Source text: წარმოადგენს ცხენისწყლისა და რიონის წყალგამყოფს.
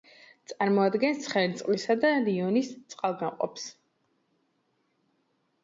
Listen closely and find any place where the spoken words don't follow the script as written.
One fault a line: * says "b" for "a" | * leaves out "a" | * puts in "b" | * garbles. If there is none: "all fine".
all fine